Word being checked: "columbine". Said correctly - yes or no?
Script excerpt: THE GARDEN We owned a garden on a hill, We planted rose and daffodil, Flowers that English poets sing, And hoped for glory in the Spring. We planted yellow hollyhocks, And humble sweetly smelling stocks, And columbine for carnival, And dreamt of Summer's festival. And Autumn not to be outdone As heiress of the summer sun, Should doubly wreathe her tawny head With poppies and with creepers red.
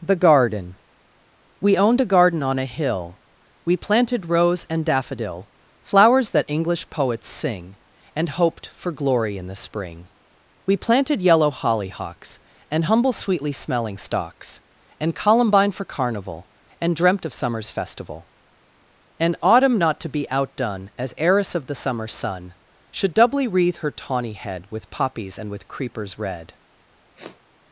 yes